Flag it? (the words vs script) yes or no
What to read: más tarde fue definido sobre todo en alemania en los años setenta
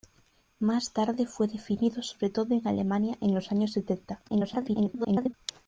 yes